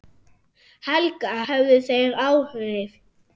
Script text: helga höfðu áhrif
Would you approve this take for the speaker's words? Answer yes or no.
no